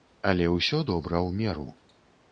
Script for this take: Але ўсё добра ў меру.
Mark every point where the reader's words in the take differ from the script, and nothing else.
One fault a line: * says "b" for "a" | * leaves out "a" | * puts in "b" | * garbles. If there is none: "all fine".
all fine